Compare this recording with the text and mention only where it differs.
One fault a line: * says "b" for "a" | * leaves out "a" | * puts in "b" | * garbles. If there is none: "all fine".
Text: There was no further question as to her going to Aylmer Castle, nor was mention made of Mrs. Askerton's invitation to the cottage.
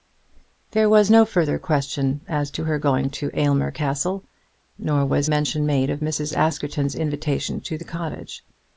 all fine